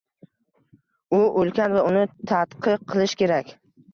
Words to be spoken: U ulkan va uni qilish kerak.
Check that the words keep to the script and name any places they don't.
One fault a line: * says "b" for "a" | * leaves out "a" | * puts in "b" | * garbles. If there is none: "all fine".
* puts in "tadqiq"